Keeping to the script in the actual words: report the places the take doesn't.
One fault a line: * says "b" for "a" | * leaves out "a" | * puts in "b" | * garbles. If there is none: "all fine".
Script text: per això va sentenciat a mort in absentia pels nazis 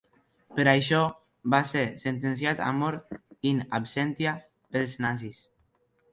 * puts in "ser"